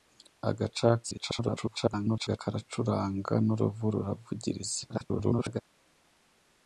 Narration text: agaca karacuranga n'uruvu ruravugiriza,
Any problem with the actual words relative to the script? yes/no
yes